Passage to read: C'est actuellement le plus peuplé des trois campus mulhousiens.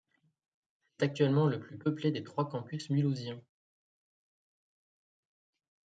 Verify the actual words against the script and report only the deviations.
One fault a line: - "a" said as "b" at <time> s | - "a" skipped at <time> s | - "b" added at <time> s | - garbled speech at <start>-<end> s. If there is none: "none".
none